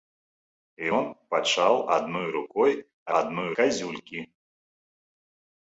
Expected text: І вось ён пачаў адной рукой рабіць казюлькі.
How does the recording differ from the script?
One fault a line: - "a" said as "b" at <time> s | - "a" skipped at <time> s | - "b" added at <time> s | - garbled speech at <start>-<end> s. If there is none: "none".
- "вось" skipped at 0.9 s
- "рабіць" said as "адной" at 3.2 s